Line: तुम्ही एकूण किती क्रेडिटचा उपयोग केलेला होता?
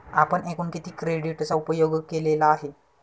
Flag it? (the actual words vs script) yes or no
yes